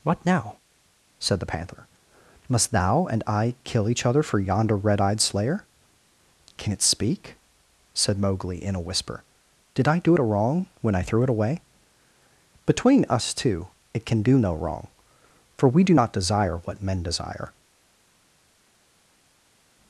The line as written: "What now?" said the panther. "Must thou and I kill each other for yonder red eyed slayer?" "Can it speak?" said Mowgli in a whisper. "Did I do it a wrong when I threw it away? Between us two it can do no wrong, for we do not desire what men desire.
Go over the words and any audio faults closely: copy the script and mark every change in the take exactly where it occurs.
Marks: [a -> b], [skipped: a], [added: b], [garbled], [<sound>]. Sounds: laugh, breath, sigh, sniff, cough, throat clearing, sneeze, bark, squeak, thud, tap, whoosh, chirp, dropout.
"What now?" said the panther. "Must thou and I kill each other for yonder red eyed slayer?" "Can it speak?" said Mowgli in a whisper. "Did I do it a wrong when I threw it away? Between us two it can do no wrong, for we do not desire what men desire.